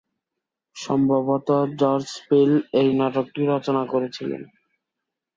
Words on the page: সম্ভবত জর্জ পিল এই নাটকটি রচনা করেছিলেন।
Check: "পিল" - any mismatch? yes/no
no